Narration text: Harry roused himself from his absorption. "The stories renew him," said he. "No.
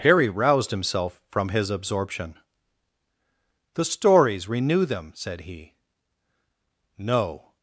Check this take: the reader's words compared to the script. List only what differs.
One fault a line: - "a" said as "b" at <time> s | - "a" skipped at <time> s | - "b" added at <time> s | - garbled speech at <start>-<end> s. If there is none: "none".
- "him" said as "them" at 4.8 s